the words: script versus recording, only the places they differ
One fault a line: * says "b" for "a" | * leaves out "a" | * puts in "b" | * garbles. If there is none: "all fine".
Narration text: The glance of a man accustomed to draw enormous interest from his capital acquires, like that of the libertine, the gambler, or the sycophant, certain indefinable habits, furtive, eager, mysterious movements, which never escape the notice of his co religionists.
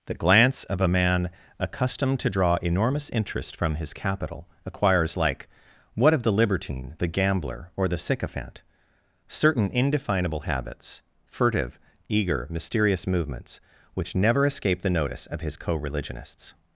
* says "what" for "that"